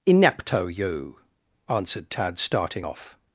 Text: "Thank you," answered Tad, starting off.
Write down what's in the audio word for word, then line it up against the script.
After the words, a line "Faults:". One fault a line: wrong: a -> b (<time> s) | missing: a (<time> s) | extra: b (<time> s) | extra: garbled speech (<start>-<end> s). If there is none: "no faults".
"Inepto you," answered Tad, starting off.
Faults:
wrong: Thank -> Inepto (0.1 s)